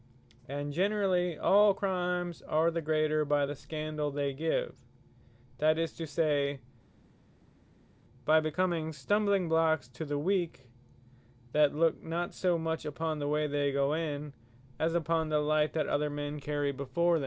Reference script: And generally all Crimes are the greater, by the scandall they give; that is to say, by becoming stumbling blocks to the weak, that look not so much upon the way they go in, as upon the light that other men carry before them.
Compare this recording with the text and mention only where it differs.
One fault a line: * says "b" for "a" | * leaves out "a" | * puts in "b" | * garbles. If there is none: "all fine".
all fine